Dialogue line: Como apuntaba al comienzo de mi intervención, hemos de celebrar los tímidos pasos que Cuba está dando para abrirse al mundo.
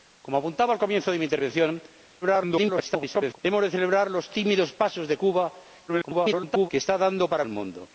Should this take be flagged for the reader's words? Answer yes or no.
yes